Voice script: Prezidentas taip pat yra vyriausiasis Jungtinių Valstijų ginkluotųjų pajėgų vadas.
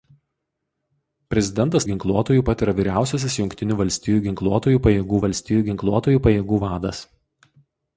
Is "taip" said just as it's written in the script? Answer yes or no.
no